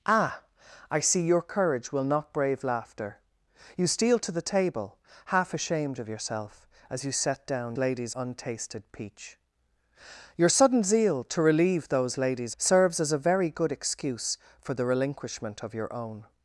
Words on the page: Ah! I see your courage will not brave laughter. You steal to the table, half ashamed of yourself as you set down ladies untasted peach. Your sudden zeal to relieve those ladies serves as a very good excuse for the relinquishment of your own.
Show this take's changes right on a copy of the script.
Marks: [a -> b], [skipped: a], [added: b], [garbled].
Ah! I see your courage will not brave laughter. You steal to the table, half ashamed of yourself as you set down ladies untasted peach. Your sudden zeal to relieve those ladies serves as a very good excuse for the relinquishment of your own.